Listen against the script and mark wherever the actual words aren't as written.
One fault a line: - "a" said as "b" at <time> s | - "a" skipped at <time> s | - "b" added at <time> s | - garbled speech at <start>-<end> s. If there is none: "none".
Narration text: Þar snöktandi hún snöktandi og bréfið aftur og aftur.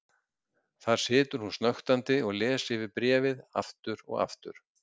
- "snöktandi" said as "situr" at 1.0 s
- "les yfir" added at 2.4 s